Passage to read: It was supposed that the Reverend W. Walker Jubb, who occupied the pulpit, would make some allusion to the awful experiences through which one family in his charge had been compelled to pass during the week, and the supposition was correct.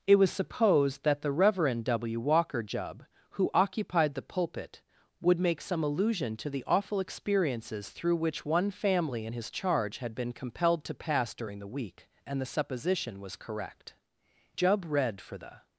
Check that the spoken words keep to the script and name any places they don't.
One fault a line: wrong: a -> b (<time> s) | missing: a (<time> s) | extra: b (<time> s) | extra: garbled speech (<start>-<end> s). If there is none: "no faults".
extra: Jubb read for the (14.6 s)